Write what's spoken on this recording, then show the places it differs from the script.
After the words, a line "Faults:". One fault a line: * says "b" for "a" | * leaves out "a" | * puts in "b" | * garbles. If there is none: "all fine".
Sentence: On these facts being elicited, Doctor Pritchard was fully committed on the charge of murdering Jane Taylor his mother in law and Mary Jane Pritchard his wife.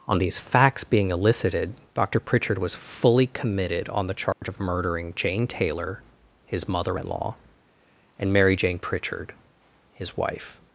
On these facts being elicited, Doctor Pritchard was fully committed on the charge of murdering Jane Taylor his mother in law and Mary Jane Pritchard his wife.
Faults:
all fine